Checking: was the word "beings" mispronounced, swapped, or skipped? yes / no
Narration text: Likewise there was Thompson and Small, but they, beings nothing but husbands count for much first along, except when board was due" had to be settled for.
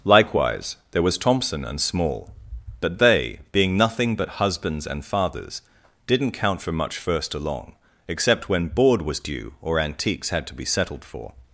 yes